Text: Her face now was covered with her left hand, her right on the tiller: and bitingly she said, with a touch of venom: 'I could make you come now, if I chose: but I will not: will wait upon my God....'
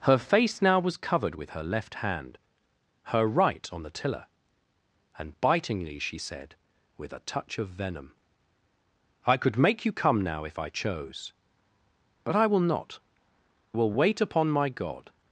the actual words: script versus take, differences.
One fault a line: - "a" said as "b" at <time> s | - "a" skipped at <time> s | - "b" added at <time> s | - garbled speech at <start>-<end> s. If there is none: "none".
none